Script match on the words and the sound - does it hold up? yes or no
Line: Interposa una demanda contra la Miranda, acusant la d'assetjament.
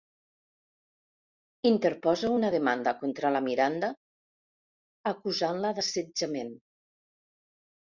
yes